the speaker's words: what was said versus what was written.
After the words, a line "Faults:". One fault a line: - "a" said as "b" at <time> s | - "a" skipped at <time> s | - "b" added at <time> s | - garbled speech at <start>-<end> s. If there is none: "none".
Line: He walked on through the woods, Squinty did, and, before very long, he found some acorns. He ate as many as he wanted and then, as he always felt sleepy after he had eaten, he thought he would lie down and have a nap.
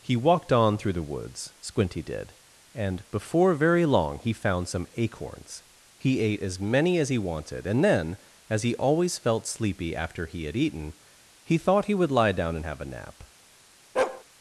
He walked on through the woods, Squinty did, and, before very long, he found some acorns. He ate as many as he wanted and then, as he always felt sleepy after he had eaten, he thought he would lie down and have a nap.
Faults:
none